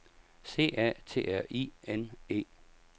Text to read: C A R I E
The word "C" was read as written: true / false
true